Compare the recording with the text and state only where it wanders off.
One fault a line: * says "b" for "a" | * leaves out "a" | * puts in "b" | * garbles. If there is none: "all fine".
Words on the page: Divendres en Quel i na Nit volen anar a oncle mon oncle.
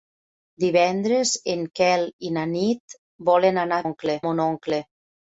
all fine